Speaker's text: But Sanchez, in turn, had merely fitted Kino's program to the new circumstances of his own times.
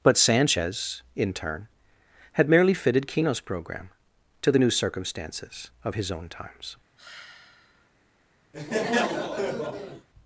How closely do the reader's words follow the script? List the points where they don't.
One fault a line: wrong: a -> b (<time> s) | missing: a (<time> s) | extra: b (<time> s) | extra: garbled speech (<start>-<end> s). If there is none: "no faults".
no faults